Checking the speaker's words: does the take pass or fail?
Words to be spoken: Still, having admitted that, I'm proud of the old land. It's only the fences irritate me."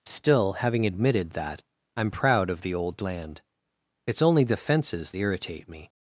pass